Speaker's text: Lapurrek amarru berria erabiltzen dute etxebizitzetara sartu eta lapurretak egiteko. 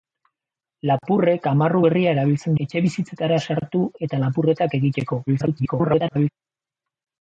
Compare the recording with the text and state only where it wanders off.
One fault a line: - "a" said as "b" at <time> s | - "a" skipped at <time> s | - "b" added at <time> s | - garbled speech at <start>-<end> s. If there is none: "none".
- "dute" skipped at 2.5 s
- garbled speech at 5.3-6.3 s